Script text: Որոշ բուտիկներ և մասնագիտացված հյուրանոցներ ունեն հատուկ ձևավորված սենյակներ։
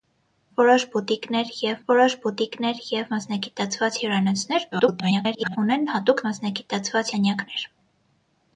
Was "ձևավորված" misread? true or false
true